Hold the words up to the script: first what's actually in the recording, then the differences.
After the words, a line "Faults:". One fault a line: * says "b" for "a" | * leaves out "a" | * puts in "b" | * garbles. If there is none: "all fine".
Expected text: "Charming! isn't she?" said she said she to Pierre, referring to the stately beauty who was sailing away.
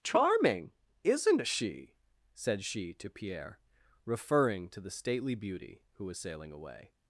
"Charming! isn't she?" said she to Pierre, referring to the stately beauty who was sailing away.
Faults:
* leaves out "said she"